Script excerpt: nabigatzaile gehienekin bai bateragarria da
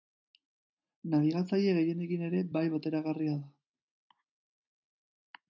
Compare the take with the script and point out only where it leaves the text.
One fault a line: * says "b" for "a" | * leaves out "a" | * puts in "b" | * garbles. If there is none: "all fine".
* puts in "ere"